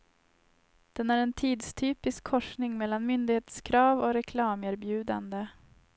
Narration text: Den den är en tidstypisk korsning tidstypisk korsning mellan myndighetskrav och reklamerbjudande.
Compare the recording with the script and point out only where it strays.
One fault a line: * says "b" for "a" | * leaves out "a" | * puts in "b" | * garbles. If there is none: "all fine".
* leaves out "den"
* leaves out "tidstypisk korsning"